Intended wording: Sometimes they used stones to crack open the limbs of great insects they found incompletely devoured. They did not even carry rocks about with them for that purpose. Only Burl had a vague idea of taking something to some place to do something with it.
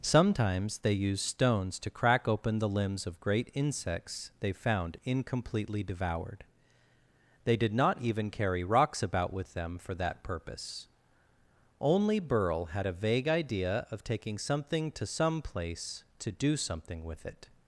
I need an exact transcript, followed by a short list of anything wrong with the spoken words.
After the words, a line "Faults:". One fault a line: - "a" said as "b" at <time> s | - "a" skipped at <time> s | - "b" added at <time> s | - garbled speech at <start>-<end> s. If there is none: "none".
Sometimes they used stones to crack open the limbs of great insects they found incompletely devoured. They did not even carry rocks about with them for that purpose. Only Burl had a vague idea of taking something to some place to do something with it.
Faults:
none